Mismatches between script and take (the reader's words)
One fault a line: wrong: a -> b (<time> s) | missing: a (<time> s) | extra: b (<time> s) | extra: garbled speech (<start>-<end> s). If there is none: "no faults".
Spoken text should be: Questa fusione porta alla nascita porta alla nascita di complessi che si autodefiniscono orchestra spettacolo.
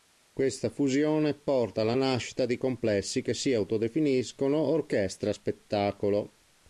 missing: porta alla nascita (2.5 s)